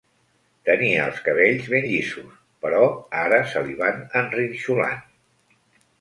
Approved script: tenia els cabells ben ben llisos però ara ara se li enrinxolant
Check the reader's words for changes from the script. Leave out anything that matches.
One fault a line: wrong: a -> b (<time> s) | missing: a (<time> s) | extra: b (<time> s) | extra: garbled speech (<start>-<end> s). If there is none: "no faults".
missing: ben (1.8 s)
missing: ara (3.4 s)
extra: van (3.8 s)